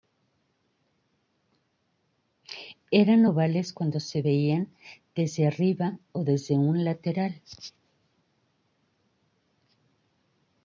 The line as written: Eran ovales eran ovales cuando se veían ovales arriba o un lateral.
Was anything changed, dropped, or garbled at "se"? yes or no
no